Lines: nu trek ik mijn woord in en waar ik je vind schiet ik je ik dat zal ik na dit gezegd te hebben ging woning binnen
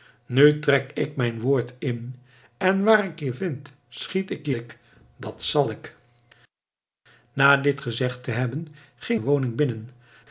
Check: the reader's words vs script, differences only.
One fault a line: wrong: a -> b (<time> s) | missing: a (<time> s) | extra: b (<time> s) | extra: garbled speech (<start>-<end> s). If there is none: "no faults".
no faults